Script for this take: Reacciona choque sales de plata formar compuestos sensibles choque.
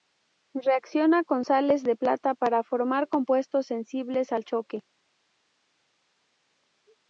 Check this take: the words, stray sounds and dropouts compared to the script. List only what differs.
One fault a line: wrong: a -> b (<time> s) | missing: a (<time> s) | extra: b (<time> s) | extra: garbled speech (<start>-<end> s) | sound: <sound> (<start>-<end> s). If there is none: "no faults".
wrong: choque -> con (1.2 s)
extra: para (2.3 s)
extra: al (4.3 s)